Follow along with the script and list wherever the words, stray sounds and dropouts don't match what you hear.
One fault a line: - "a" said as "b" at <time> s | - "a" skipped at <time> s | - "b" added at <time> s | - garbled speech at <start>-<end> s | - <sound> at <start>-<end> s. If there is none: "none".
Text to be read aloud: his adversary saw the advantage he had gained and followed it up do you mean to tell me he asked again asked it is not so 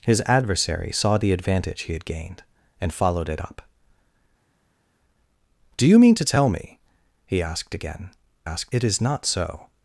none